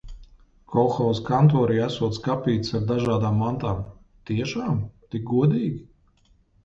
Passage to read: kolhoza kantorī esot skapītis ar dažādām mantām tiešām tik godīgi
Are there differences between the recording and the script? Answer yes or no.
no